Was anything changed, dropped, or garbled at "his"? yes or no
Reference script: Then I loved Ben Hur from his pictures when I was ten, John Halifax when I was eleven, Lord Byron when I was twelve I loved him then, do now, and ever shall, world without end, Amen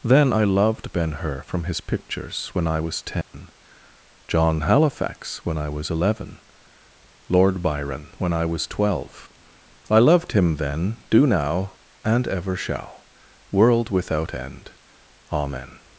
no